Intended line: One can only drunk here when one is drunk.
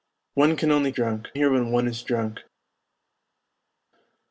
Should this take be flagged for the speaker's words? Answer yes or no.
no